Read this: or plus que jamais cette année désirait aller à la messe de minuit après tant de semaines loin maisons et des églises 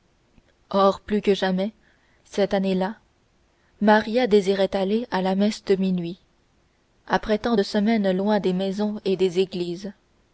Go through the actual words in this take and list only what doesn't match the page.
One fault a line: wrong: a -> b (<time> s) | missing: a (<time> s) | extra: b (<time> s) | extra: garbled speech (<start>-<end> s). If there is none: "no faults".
extra: là maria (2.7 s)
extra: des (8.4 s)